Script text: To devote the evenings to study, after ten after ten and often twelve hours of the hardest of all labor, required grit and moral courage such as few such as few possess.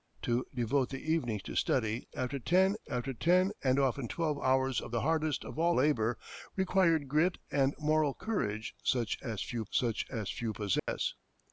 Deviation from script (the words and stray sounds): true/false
true